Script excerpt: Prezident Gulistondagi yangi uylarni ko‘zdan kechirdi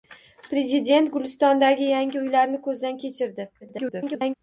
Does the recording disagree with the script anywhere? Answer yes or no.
yes